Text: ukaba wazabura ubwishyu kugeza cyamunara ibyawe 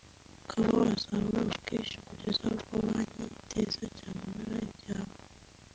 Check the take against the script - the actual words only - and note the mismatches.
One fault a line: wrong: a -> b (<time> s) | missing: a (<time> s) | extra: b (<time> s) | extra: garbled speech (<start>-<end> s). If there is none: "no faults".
extra: ubwo banki iteza (2.5 s)